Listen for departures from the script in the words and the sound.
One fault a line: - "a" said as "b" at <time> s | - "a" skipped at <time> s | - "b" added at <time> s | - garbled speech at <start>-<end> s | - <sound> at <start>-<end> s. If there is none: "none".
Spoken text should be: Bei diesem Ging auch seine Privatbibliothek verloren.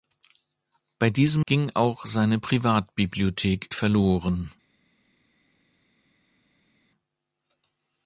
none